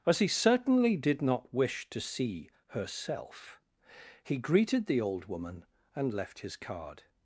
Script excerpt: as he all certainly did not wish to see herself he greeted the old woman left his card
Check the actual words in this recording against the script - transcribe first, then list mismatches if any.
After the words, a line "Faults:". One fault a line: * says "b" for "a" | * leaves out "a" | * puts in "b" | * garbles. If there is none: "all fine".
as he certainly did not wish to see herself he greeted the old woman and left his card
Faults:
* leaves out "all"
* puts in "and"